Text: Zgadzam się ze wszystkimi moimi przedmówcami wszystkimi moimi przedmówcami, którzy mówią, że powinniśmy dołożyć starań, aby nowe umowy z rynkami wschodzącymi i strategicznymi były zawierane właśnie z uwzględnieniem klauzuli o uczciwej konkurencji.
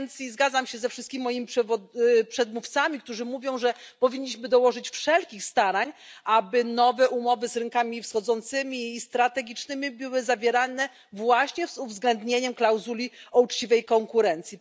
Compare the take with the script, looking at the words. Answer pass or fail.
fail